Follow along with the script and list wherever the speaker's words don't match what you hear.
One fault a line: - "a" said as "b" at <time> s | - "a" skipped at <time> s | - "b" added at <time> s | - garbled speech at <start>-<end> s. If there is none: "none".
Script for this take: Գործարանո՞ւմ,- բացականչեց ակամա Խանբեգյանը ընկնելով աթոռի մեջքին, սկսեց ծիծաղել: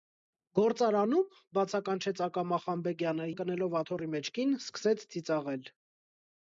none